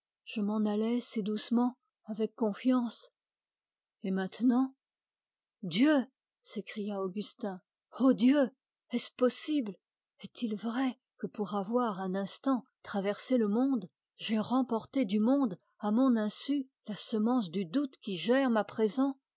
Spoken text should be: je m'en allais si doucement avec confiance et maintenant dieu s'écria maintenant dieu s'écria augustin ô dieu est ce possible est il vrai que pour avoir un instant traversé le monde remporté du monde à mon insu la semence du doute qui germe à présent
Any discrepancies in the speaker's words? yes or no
yes